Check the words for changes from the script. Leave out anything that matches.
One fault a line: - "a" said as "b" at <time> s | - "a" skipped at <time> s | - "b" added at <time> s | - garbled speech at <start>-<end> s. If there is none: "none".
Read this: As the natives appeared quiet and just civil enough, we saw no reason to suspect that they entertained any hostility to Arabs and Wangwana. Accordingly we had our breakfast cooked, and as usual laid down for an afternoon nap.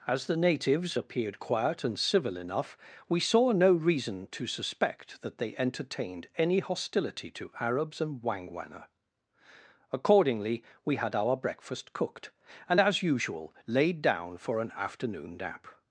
- "just" skipped at 2.0 s